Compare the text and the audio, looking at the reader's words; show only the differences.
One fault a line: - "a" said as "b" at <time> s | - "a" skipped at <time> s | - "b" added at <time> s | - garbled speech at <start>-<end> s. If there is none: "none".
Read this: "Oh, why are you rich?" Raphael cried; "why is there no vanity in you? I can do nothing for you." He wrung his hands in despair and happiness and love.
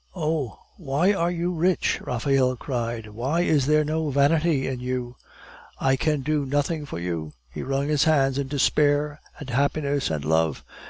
none